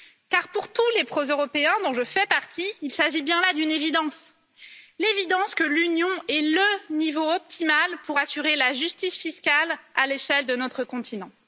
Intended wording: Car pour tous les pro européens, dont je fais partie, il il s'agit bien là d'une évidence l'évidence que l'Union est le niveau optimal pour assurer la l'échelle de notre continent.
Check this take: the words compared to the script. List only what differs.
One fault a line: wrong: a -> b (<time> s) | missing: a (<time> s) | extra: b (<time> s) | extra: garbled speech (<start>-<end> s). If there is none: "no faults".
missing: il (2.9 s)
extra: justice fiscale à (8.7 s)